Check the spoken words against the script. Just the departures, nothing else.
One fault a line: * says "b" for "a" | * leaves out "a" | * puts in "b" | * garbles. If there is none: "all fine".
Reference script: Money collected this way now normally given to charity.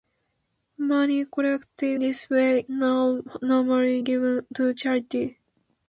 all fine